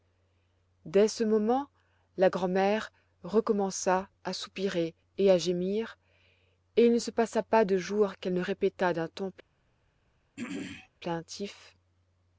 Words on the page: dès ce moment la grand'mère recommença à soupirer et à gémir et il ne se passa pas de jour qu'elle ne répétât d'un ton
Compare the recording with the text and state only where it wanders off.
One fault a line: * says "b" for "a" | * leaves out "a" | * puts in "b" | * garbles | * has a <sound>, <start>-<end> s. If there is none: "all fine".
* has a throat clearing, 10.4-10.9 s